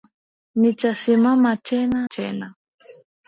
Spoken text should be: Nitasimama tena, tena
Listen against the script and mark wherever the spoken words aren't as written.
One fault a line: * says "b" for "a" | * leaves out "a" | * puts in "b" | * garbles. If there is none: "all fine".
all fine